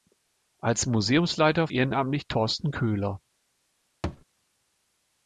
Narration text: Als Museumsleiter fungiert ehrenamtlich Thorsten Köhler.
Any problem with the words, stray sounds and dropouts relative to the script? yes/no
yes